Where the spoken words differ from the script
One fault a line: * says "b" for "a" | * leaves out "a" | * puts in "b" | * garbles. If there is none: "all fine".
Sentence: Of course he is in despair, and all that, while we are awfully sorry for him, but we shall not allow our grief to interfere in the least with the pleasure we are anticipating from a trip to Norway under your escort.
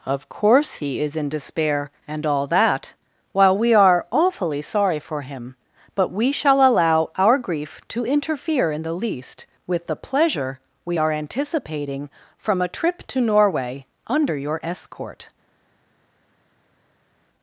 * leaves out "not"